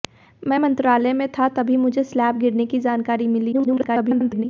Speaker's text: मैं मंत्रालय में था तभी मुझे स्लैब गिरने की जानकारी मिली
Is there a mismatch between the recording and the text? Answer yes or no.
yes